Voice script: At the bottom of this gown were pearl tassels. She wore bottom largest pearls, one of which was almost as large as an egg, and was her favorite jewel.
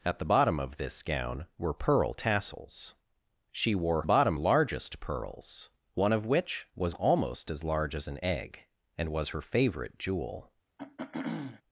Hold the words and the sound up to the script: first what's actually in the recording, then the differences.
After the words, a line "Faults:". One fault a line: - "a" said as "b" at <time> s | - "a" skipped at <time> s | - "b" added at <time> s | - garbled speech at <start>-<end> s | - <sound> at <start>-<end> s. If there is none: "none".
At the bottom of this gown were pearl tassels. She wore bottom largest pearls, one of which was almost as large as an egg, and was her favorite jewel.
Faults:
- throat clearing at 10.8-11.6 s